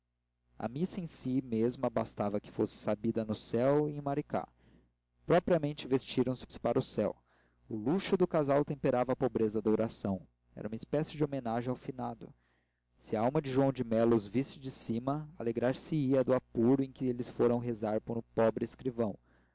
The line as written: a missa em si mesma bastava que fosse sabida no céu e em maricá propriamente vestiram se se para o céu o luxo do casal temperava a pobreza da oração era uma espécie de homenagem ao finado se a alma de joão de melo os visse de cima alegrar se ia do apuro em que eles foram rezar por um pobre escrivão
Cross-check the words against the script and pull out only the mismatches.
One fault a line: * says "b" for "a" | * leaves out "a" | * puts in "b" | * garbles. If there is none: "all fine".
all fine